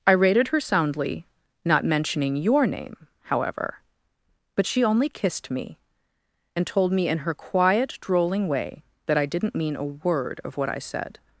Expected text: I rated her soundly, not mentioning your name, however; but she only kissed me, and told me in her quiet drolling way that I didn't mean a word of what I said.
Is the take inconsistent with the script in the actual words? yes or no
no